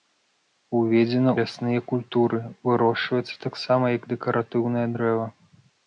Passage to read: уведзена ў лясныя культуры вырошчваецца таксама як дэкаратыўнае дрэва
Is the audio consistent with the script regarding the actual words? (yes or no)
no